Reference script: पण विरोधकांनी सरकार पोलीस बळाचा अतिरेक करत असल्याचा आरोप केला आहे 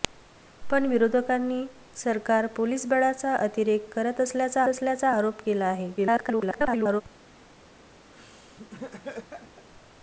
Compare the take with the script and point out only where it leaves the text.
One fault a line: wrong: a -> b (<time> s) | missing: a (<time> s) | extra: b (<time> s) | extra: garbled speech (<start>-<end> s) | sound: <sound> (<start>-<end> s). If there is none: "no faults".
extra: असल्याचा (4.7 s)
extra: garbled speech (6.0-7.0 s)
sound: laugh (8.1-9.7 s)